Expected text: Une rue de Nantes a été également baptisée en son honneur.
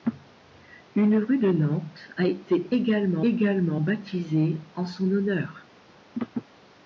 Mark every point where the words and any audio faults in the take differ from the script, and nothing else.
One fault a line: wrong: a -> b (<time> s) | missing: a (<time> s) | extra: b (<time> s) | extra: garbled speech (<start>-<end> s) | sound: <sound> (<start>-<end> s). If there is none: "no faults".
extra: également (3.3 s)